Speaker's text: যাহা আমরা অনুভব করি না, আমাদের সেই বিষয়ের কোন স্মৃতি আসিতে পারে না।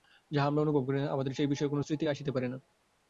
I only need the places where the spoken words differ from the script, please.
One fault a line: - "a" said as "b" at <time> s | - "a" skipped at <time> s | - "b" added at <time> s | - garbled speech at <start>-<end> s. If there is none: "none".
none